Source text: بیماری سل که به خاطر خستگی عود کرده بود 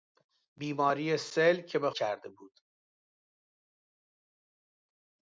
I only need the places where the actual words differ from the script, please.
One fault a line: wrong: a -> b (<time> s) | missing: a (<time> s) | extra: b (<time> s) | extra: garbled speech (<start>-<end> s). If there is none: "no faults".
missing: خاطر خستگی عود (1.9 s)